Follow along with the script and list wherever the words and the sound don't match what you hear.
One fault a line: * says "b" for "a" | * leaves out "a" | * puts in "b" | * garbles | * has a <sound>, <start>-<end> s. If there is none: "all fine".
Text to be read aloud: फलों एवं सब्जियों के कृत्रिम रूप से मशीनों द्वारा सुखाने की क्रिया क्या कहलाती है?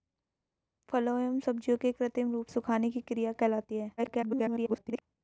* leaves out "से मशीनों द्वारा"
* leaves out "क्या"
* garbles